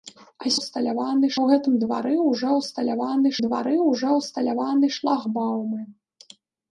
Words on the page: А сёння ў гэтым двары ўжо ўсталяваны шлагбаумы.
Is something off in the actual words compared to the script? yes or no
yes